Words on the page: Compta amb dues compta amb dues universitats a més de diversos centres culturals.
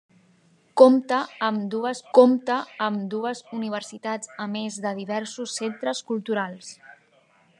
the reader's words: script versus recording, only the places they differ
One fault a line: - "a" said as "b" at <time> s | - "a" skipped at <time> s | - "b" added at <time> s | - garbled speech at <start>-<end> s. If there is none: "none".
none